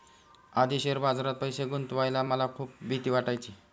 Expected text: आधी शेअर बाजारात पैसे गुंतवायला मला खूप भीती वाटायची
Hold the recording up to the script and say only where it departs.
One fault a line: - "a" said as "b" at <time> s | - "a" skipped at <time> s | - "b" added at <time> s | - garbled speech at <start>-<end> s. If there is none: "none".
none